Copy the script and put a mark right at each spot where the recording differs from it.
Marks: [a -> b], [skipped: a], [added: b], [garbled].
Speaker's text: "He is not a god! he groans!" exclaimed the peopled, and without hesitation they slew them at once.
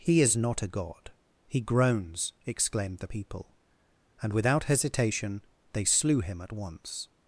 "He is not a god! he groans!" exclaimed the [peopled, -> people] and without hesitation they slew [them -> him] at once.